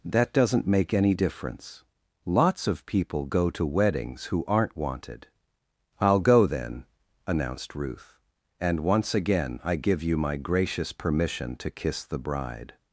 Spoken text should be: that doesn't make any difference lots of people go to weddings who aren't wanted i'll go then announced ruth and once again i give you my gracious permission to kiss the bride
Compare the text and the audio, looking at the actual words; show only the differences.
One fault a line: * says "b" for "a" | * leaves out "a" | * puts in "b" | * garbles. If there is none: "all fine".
all fine